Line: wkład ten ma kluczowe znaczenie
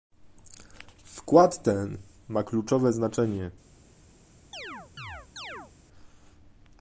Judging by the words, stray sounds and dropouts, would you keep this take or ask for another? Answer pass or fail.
fail